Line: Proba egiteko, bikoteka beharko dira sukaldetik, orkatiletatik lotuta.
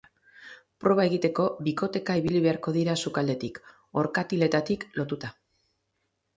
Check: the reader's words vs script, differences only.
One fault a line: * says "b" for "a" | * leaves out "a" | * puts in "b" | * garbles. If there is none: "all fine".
* puts in "ibili"